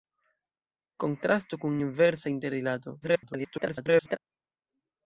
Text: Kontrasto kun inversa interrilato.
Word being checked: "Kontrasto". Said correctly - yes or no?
yes